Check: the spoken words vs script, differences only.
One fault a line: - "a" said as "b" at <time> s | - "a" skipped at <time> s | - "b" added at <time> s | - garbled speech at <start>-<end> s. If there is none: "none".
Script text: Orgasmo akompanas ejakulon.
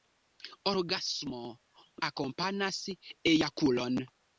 none